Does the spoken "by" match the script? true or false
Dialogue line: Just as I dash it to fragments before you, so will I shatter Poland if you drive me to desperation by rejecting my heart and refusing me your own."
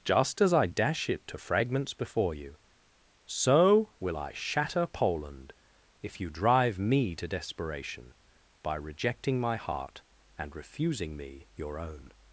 true